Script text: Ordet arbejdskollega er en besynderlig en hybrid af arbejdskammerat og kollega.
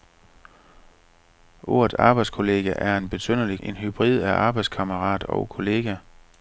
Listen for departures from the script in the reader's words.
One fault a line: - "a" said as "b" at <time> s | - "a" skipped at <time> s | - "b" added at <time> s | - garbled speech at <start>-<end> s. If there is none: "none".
none